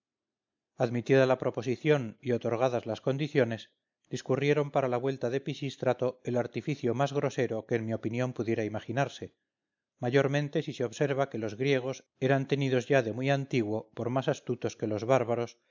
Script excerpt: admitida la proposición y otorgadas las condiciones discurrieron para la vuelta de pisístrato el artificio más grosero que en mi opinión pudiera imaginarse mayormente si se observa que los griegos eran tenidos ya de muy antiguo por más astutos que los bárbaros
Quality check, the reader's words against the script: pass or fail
pass